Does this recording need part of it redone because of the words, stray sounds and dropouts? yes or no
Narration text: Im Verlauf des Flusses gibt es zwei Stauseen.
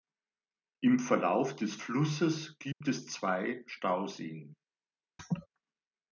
yes